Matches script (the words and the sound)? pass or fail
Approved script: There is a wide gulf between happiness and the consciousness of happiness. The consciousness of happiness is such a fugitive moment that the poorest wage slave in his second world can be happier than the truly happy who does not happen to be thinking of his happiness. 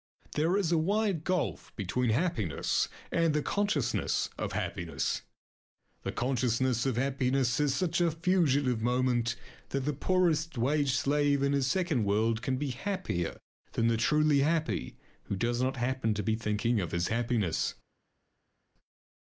pass